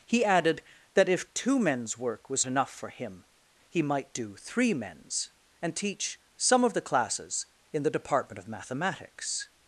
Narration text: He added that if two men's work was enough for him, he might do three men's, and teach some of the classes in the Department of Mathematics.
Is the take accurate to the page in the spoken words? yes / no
yes